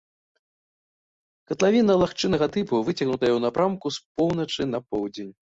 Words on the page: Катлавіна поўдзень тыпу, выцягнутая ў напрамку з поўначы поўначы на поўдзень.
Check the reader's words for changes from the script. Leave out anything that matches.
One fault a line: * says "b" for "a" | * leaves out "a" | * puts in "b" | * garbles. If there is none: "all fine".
* says "лагчыннага" for "поўдзень"
* leaves out "поўначы"